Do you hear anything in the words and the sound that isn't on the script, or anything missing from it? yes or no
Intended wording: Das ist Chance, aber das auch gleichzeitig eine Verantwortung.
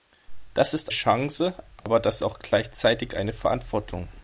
yes